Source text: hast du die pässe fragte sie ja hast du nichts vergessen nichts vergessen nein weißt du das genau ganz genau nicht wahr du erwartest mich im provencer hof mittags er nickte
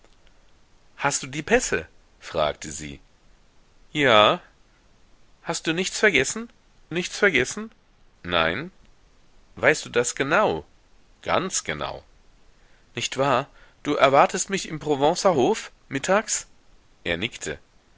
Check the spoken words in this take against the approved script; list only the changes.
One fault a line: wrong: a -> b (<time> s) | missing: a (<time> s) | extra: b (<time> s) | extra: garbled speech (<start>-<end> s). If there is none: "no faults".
no faults